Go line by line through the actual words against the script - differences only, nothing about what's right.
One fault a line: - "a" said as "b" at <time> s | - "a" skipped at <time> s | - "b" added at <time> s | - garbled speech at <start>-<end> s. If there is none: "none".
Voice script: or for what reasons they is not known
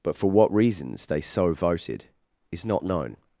- "or" said as "but" at 0.0 s
- "so voted" added at 1.2 s